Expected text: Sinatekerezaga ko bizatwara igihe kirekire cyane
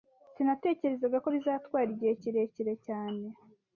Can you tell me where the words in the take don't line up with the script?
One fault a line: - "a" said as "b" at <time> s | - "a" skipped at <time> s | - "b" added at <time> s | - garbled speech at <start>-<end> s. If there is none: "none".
none